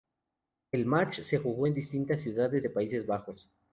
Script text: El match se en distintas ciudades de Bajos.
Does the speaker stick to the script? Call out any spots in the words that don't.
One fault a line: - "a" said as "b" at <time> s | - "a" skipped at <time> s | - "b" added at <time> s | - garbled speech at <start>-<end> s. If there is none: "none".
- "jugó" added at 1.4 s
- "Países" added at 2.7 s